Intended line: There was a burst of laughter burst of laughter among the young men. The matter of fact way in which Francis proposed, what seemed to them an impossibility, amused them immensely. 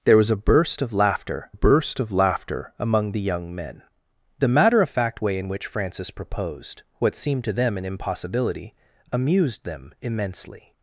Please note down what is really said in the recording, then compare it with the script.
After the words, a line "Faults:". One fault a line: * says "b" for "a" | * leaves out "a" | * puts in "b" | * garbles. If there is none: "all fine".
There was a burst of laughter burst of laughter among the young men. The matter of fact way in which Francis proposed, what seemed to them an impossibility, amused them immensely.
Faults:
all fine